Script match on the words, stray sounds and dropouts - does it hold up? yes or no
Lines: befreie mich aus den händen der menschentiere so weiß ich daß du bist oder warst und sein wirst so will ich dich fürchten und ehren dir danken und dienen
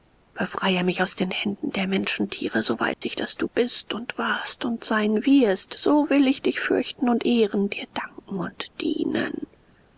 no